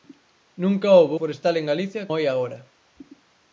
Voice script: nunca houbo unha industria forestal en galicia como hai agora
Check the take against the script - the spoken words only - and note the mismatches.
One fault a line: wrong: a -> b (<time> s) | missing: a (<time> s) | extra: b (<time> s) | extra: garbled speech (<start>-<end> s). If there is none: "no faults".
missing: unha industria (1.1 s)
missing: como (2.0 s)